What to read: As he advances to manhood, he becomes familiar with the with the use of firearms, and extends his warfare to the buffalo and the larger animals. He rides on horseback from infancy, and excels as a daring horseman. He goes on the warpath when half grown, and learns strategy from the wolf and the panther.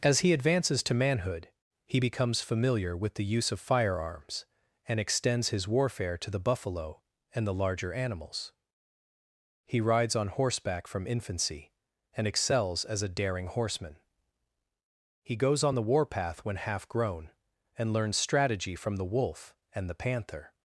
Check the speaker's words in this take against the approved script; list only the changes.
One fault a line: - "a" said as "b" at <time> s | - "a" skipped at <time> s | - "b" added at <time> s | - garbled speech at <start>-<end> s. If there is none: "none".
- "with the" skipped at 3.3 s